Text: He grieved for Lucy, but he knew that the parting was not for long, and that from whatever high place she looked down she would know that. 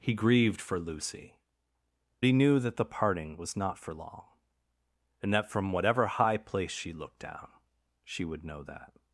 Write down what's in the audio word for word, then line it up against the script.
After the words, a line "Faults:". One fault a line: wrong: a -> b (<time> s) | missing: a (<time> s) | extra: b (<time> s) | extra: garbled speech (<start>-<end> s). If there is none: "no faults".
He grieved for Lucy, he knew that the parting was not for long, and that from whatever high place she looked down she would know that.
Faults:
missing: but (1.4 s)